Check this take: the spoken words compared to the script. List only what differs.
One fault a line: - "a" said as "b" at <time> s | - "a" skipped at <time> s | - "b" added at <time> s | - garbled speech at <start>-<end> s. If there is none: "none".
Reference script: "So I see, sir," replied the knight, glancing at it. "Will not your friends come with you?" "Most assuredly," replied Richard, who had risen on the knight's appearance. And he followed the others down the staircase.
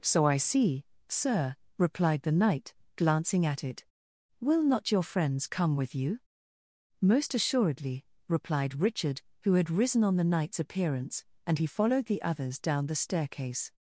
none